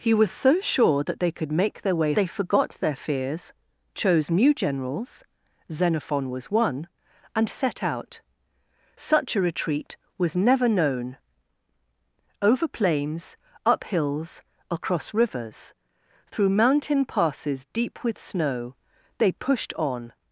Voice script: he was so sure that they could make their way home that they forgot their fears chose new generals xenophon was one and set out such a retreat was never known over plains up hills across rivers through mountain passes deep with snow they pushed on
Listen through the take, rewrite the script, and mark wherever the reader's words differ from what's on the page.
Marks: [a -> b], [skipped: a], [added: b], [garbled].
he was so sure that they could make their way [skipped: home that] they forgot their fears chose new generals xenophon was one and set out such a retreat was never known over plains up hills across rivers through mountain passes deep with snow they pushed on